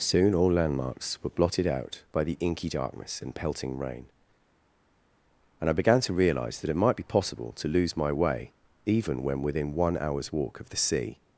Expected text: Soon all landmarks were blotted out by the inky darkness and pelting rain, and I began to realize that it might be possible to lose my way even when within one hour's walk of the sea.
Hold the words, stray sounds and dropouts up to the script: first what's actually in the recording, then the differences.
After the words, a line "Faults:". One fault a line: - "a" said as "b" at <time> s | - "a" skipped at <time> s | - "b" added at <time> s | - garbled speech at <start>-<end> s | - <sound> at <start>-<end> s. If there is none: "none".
Soon all landmarks were blotted out by the inky darkness and pelting rain, and I began to realize that it might be possible to lose my way even when within one hour's walk of the sea.
Faults:
none